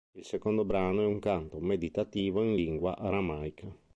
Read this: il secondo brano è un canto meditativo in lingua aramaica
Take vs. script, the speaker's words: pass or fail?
pass